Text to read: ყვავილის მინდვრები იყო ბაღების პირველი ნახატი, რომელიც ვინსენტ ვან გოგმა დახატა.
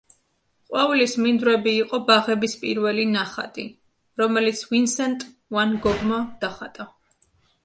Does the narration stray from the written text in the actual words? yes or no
no